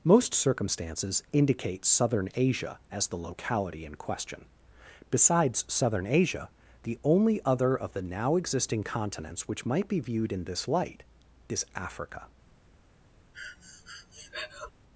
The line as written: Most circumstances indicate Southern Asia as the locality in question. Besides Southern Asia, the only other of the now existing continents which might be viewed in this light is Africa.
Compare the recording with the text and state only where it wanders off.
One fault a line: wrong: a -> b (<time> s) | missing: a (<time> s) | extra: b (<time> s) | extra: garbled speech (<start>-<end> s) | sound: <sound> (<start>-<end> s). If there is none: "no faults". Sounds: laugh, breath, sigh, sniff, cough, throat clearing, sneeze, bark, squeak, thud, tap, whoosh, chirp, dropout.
sound: breath (13.3-14.7 s)